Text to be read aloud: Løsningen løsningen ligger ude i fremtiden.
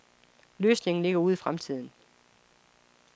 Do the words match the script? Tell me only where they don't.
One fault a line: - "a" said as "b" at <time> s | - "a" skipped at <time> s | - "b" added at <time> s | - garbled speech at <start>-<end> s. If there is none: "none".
- "løsningen" skipped at 1.0 s